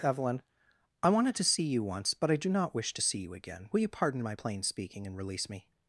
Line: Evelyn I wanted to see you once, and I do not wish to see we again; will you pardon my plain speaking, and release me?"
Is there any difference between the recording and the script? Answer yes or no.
yes